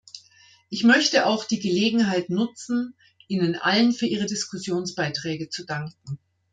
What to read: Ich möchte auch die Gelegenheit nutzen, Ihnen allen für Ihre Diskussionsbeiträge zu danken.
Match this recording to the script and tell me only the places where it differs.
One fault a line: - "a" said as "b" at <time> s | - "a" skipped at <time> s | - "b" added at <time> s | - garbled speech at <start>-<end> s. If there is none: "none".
none